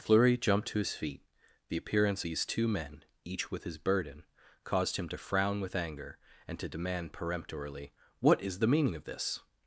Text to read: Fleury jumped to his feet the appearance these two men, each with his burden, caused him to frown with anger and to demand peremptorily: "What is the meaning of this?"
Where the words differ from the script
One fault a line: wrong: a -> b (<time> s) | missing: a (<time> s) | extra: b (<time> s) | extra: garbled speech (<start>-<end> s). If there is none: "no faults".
no faults